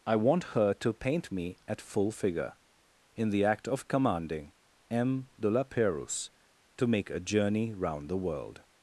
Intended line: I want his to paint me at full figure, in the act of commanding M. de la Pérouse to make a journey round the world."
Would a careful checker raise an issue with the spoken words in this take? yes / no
yes